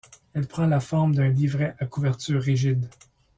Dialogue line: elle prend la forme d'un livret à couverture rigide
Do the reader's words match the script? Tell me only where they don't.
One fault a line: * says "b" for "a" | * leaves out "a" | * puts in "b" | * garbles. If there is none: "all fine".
all fine